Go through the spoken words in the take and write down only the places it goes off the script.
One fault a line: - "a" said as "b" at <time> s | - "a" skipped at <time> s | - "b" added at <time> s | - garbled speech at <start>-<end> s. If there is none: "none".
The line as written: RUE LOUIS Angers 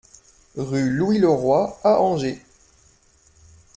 - "LEROY à" added at 1.2 s